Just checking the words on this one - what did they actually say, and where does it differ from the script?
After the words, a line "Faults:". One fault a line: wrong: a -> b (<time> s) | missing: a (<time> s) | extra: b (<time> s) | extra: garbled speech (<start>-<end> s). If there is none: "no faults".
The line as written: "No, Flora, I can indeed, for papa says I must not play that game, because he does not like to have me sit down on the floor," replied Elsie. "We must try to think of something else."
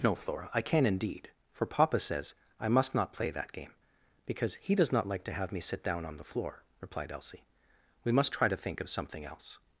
"No, Flora, I can indeed, for papa says I must not play that game, because he does not like to have me sit down on the floor," replied Elsie. "We must try to think of something else."
Faults:
no faults